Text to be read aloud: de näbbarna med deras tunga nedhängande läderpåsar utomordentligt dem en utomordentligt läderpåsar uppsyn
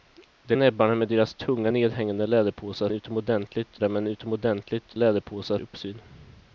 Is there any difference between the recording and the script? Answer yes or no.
no